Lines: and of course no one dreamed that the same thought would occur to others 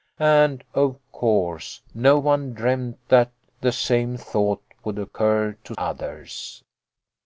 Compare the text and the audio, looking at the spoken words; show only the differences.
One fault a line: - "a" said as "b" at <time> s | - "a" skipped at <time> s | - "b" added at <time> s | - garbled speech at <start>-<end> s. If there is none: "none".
none